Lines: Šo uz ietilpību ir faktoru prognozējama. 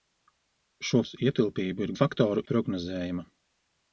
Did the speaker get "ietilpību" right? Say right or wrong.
right